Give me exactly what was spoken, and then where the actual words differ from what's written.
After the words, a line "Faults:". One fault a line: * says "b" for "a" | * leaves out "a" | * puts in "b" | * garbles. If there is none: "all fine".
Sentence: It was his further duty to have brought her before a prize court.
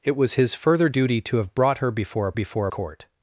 It was his further duty to have brought her before a before court.
Faults:
* says "before" for "prize"